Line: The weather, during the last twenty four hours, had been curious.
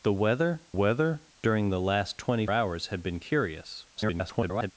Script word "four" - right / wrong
wrong